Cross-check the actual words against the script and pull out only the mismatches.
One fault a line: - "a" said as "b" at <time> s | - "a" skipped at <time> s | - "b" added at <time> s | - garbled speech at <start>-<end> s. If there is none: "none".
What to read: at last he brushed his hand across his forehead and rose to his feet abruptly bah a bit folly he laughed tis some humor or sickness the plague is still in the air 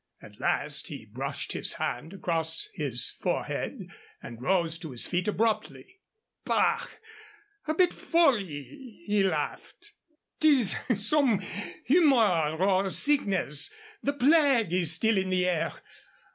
none